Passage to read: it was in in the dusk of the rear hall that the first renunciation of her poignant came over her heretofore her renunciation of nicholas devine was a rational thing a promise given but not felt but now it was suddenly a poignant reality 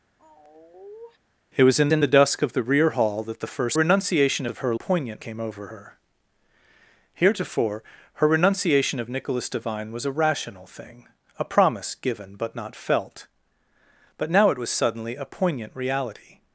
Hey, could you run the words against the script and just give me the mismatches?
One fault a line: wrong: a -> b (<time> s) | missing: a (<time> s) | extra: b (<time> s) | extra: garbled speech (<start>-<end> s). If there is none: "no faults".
no faults